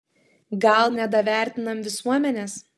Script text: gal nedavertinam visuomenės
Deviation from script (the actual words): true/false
false